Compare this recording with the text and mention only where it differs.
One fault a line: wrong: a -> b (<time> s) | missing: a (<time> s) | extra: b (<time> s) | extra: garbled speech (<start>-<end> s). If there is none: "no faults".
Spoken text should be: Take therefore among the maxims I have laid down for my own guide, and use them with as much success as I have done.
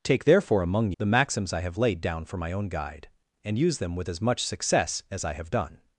no faults